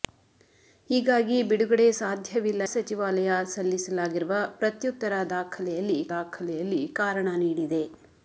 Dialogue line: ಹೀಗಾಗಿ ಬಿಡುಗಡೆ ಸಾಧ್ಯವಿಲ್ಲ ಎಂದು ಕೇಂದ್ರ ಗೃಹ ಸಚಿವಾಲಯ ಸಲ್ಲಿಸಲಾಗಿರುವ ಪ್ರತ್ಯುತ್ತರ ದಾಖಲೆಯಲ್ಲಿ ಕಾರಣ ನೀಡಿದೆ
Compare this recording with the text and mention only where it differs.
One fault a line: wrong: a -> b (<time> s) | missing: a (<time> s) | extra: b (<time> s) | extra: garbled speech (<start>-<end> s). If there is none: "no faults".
missing: ಎಂದು ಕೇಂದ್ರ ಗೃಹ (2.6 s)
extra: ದಾಖಲೆಯಲ್ಲಿ (6.1 s)